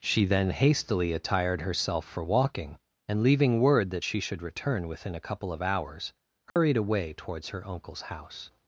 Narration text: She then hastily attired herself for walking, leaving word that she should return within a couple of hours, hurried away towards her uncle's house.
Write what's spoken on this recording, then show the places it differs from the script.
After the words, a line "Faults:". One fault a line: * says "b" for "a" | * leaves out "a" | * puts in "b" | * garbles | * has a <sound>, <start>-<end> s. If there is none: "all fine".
She then hastily attired herself for walking, and leaving word that she should return within a couple of hours, hurried away towards her uncle's house.
Faults:
* puts in "and"
* has a dropout, 6.5-6.6 s